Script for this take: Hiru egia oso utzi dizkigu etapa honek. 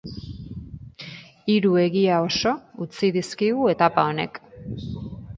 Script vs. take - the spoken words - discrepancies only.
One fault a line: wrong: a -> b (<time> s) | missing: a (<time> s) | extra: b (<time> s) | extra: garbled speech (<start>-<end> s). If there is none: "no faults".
no faults